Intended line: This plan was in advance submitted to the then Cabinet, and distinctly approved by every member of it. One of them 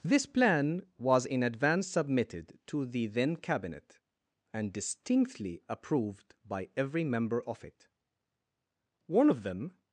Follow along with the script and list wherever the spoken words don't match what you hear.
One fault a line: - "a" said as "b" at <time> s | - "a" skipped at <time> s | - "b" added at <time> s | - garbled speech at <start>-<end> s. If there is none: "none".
none